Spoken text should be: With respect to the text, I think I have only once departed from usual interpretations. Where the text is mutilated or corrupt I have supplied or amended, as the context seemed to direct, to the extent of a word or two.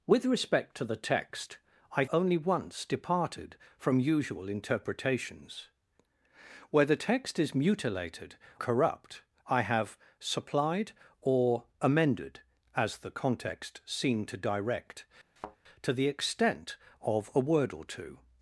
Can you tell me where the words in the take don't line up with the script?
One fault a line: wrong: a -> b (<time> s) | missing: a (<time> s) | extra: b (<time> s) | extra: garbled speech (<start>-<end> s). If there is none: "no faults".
missing: think I have (2.0 s)
missing: or (8.4 s)